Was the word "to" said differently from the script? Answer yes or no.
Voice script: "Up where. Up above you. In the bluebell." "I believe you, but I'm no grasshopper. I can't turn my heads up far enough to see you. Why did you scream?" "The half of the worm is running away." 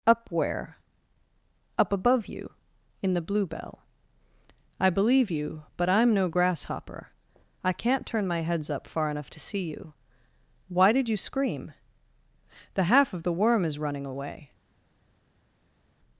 no